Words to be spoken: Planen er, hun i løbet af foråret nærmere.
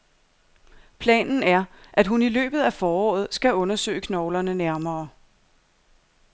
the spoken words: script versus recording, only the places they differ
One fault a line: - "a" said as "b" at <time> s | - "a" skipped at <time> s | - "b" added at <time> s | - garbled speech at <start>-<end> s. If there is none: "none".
- "at" added at 1.9 s
- "skal undersøge knoglerne" added at 3.3 s